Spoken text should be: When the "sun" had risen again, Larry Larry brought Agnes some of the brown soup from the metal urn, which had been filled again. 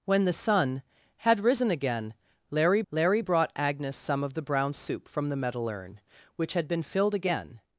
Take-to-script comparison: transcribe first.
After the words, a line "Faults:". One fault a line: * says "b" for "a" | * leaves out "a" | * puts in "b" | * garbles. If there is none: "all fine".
When the "sun" had risen again, Larry Larry brought Agnes some of the brown soup from the metal urn, which had been filled again.
Faults:
all fine